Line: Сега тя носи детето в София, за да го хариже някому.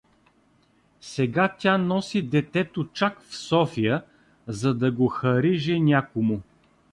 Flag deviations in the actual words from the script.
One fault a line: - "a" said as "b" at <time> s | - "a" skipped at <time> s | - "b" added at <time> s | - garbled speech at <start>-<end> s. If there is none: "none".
- "чак" added at 2.9 s